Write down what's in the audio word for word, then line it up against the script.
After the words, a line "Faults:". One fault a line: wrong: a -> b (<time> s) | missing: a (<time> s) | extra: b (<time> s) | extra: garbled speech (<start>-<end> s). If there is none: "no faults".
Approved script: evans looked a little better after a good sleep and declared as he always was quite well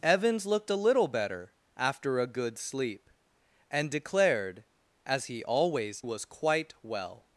evans looked a little better after a good sleep and declared as he always was quite well
Faults:
no faults